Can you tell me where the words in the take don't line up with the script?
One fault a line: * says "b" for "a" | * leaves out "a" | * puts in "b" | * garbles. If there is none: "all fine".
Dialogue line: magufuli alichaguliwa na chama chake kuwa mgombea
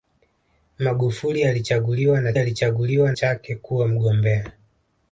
* says "alichaguliwa" for "chama"